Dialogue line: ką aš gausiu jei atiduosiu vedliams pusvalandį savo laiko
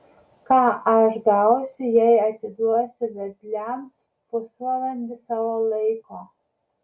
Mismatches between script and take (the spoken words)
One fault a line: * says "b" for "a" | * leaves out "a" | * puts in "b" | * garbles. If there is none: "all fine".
all fine